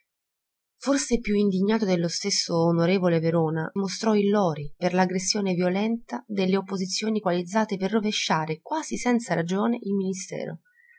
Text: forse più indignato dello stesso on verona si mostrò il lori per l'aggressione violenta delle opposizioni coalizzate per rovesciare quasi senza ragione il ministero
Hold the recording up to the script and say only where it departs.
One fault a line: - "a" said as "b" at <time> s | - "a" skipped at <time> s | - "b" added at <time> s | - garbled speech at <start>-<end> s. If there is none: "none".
- "si" skipped at 3.7 s